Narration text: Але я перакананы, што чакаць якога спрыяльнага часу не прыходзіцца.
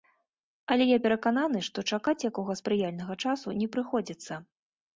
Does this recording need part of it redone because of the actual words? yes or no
no